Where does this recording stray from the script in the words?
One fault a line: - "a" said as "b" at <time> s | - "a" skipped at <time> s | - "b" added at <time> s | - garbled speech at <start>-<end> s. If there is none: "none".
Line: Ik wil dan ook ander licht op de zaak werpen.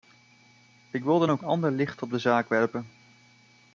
none